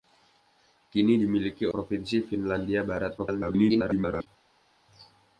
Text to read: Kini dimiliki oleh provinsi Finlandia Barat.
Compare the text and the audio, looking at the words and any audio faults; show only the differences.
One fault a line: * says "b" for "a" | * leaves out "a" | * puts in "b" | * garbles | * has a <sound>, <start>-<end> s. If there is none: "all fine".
* leaves out "oleh"
* garbles